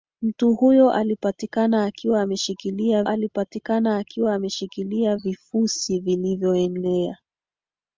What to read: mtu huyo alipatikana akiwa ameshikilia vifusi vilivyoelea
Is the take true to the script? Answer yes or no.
no